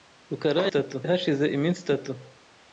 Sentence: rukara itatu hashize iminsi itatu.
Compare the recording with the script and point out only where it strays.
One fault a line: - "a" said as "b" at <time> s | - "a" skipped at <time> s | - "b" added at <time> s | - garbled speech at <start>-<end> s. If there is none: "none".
none